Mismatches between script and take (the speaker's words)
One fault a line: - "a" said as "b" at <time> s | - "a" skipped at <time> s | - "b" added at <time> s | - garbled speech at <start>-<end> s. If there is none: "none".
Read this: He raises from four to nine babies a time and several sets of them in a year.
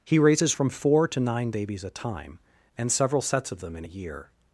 none